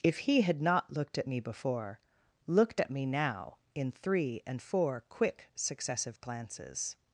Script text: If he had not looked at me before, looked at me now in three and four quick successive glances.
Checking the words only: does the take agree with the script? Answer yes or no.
yes